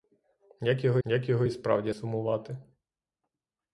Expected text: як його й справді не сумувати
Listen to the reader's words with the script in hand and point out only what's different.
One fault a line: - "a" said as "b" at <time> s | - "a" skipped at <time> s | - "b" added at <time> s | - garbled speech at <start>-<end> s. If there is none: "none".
- "як його" added at 1.0 s
- "не" skipped at 1.9 s